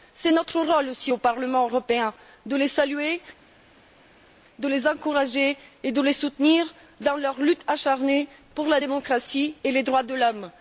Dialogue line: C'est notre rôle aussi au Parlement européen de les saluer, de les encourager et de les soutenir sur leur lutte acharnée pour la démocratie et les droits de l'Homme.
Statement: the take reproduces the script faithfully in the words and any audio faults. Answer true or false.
false